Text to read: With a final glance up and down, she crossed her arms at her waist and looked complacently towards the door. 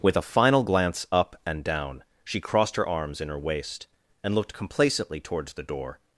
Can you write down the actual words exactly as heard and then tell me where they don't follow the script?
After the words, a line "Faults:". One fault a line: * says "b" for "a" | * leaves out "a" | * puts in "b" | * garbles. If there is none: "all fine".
With a final glance up and down, she crossed her arms in her waist and looked complacently towards the door.
Faults:
* says "in" for "at"